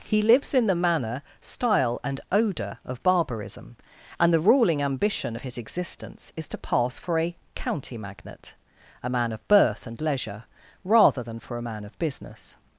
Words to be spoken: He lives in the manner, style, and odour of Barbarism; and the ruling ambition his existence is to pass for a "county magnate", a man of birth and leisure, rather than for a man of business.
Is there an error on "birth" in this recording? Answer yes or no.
no